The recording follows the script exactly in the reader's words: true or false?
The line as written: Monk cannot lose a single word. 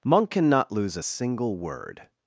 true